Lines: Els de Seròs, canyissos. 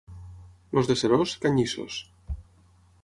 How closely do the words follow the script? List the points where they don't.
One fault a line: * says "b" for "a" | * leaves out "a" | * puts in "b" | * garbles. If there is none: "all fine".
all fine